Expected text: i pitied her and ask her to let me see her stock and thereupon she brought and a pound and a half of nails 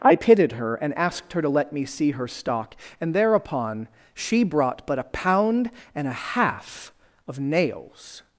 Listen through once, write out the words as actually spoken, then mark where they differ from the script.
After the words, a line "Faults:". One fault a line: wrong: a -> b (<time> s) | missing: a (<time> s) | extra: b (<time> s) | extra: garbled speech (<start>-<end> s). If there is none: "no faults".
i pitied her and asked her to let me see her stock and thereupon she brought but a pound and a half of nails
Faults:
wrong: ask -> asked (0.9 s)
wrong: and -> but (4.9 s)